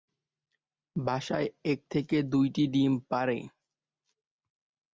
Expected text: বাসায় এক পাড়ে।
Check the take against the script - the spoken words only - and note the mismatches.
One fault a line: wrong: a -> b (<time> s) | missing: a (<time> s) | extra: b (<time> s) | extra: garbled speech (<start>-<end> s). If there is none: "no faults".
extra: থেকে দুইটি ডিম (1.9 s)